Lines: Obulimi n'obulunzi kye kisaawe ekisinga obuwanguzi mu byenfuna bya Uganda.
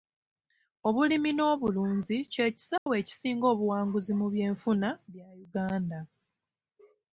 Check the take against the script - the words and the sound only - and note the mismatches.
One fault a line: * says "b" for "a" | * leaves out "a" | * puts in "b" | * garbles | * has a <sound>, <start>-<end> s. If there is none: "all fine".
* has a dropout, 2.8-2.9 s